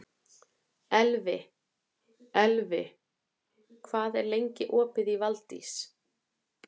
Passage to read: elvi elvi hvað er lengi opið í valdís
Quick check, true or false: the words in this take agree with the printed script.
true